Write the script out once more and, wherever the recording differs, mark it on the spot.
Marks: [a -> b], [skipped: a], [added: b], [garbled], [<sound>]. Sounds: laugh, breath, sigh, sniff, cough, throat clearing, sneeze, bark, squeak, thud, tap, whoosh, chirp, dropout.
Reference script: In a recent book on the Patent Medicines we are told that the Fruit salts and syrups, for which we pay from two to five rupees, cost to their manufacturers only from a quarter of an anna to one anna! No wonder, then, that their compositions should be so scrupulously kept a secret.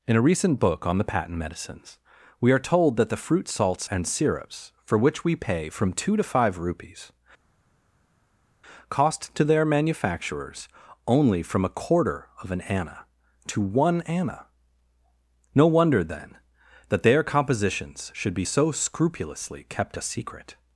In a recent book on the Patent Medicines we are told that the Fruit salts and syrups, for which we pay from two to five rupees, cost to their manufacturers only from a quarter of an anna to one anna! No wonder, then, that their compositions should be so scrupulously kept a secret.